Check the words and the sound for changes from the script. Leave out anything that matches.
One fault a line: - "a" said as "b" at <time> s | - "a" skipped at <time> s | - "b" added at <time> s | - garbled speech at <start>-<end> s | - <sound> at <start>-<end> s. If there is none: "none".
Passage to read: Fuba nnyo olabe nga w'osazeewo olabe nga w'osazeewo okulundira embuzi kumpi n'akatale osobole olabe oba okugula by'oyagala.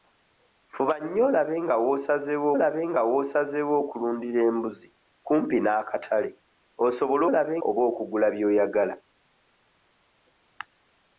none